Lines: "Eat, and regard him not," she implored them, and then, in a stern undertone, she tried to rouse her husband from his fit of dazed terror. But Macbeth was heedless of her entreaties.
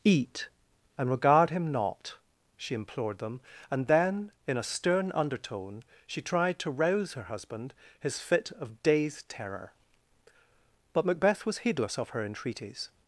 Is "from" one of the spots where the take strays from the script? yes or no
yes